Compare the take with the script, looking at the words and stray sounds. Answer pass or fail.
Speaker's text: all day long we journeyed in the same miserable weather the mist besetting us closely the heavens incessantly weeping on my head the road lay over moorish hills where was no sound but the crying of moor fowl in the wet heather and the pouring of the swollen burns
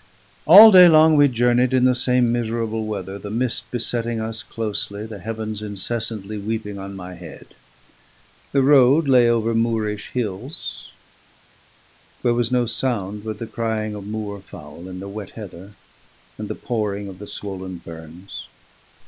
pass